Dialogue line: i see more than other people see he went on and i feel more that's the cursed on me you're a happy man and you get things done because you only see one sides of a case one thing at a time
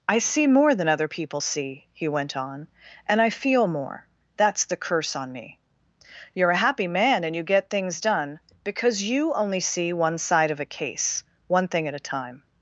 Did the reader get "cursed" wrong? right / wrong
wrong